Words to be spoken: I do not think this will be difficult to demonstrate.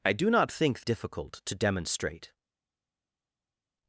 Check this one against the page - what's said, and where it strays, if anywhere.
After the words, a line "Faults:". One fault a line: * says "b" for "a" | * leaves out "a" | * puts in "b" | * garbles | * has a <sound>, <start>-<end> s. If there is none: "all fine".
I do not think difficult to demonstrate.
Faults:
* leaves out "this will be"